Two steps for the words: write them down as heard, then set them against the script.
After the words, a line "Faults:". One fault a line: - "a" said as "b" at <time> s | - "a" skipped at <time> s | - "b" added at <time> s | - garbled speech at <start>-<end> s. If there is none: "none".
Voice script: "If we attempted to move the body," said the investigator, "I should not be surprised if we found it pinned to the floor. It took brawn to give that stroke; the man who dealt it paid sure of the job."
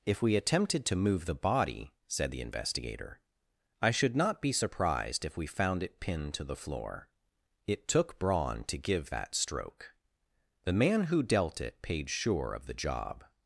"If we attempted to move the body," said the investigator, "I should not be surprised if we found it pinned to the floor. It took brawn to give that stroke; the man who dealt it paid sure of the job."
Faults:
none